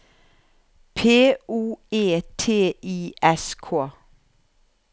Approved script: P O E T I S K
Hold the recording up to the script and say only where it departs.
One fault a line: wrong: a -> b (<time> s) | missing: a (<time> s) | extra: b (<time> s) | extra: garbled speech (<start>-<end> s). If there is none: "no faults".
no faults